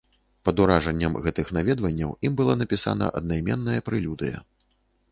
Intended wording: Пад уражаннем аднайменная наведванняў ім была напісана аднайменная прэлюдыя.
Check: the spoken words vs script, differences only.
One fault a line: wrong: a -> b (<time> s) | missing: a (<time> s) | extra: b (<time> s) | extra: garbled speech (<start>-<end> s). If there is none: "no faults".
wrong: аднайменная -> гэтых (1.2 s)